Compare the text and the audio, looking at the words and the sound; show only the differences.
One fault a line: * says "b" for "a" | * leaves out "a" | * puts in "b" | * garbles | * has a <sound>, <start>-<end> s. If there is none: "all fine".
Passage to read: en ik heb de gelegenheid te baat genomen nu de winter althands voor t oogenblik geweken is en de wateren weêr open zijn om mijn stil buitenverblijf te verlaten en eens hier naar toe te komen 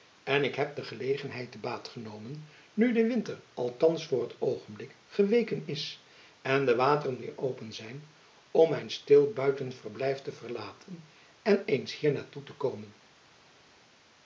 all fine